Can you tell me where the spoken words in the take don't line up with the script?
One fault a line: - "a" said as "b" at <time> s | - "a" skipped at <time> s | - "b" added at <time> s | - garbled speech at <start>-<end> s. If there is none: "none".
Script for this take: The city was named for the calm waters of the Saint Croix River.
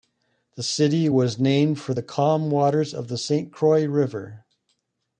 none